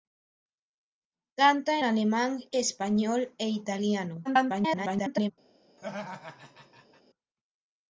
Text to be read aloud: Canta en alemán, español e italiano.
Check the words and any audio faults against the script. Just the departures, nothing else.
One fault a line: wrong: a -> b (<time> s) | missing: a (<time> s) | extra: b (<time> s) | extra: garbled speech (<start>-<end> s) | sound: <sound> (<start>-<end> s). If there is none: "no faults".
missing: en (1.8 s)
extra: garbled speech (4.2-5.3 s)
sound: laugh (5.8-7.0 s)